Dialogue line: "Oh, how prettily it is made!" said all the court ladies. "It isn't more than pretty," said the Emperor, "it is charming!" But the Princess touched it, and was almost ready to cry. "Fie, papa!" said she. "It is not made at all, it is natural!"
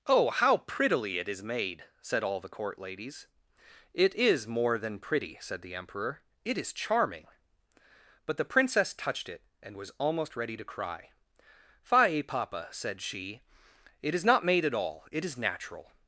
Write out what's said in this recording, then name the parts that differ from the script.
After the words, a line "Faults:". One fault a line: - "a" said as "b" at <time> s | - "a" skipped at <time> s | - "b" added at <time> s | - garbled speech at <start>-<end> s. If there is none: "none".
"Oh, how prettily it is made!" said all the court ladies. "It is more than pretty," said the Emperor, "it is charming!" But the Princess touched it, and was almost ready to cry. "Fie, papa!" said she. "It is not made at all, it is natural!"
Faults:
- "isn't" said as "is" at 4.2 s